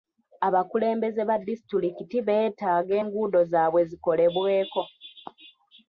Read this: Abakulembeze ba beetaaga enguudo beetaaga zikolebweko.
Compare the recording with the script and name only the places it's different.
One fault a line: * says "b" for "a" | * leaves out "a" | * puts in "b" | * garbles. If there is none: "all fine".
* puts in "disitulikiti"
* says "zaabwe" for "beetaaga"